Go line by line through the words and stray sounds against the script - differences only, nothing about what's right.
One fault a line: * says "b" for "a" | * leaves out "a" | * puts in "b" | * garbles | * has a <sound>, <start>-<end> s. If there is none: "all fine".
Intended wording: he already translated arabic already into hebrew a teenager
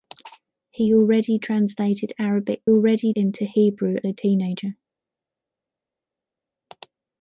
all fine